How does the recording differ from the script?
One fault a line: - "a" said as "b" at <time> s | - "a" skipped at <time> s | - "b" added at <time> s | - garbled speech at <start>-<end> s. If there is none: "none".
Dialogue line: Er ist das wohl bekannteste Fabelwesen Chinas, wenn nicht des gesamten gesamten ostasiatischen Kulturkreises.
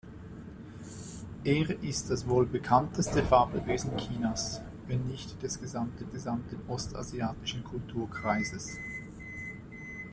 none